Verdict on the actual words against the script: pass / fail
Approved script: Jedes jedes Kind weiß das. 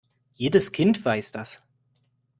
fail